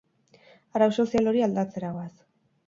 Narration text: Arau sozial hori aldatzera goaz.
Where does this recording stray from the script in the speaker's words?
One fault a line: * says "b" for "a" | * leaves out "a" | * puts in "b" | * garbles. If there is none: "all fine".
all fine